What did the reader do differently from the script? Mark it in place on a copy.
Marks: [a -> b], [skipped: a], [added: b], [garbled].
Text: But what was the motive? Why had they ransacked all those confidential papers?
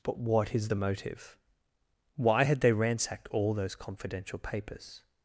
But what [was -> is] the motive? Why had they ransacked all those confidential papers?